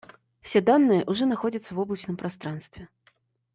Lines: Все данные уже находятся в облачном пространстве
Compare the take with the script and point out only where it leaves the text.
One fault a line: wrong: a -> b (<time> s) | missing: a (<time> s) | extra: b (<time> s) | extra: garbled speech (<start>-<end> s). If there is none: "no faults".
no faults